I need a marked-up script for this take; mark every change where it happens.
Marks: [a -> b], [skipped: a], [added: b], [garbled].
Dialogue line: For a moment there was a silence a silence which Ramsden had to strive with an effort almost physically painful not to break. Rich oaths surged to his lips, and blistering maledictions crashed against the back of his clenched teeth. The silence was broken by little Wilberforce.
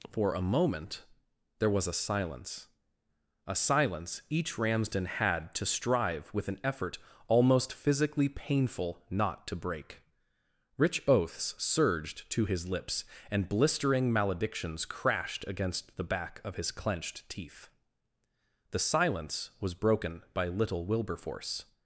For a moment there was a silence a silence [which -> each] Ramsden had to strive with an effort almost physically painful not to break. Rich oaths surged to his lips, and blistering maledictions crashed against the back of his clenched teeth. The silence was broken by little Wilberforce.